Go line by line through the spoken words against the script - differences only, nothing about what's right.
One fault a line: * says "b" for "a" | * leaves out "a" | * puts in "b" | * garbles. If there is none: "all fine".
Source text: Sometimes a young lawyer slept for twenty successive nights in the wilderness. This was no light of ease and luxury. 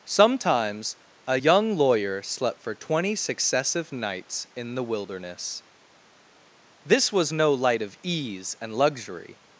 all fine